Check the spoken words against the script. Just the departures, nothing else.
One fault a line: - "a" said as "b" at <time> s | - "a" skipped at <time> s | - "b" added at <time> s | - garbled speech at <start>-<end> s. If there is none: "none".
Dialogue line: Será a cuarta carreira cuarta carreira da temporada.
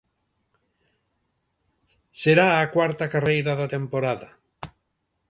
- "cuarta carreira" skipped at 3.5 s